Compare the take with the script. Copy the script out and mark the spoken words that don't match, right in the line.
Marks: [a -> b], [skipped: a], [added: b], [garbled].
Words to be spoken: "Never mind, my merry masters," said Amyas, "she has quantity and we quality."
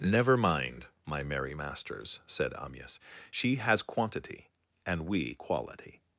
"Never mind, my merry masters," said Amyas, "she has quantity and we quality."